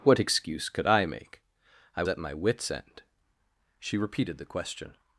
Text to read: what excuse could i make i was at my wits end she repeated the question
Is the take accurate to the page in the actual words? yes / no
no